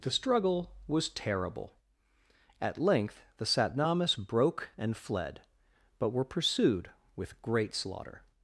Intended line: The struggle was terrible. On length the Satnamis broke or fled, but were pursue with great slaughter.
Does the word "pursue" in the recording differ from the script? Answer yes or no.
yes